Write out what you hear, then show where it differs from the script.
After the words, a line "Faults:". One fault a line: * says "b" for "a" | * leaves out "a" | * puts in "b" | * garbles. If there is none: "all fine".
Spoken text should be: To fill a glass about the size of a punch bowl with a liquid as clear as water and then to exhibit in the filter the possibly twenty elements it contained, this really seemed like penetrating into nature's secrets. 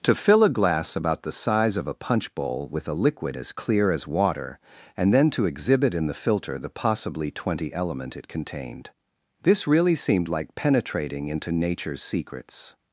To fill a glass about the size of a punch bowl with a liquid as clear as water and then to exhibit in the filter the possibly twenty element it contained, this really seemed like penetrating into nature's secrets.
Faults:
* says "element" for "elements"